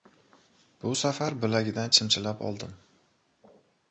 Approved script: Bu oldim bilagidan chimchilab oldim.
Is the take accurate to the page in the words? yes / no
no